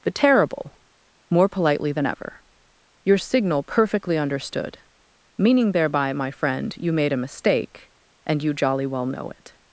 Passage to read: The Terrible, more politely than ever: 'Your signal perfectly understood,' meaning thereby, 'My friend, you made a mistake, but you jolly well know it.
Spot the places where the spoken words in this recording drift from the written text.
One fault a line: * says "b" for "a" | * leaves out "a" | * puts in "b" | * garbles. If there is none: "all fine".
* says "and" for "but"